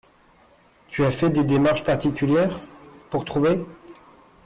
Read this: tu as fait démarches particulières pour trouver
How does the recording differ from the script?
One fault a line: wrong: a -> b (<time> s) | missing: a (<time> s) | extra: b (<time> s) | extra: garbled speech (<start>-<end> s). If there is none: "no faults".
extra: des (1.3 s)